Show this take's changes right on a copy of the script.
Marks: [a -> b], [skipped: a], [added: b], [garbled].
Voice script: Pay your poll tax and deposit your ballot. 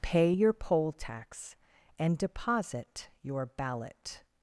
Pay your poll tax and deposit your ballot.